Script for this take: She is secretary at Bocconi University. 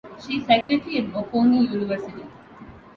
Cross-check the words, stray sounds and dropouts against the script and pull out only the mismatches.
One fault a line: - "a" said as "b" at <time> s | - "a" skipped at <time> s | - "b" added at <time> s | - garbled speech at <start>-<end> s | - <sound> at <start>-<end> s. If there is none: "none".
- dropout at 0.6-0.7 s